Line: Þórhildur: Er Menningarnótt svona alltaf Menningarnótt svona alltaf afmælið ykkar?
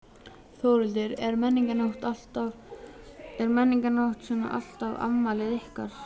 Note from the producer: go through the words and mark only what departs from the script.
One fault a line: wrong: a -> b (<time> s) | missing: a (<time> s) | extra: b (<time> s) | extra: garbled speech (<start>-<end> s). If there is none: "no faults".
missing: Menningarnótt svona alltaf (5.0 s)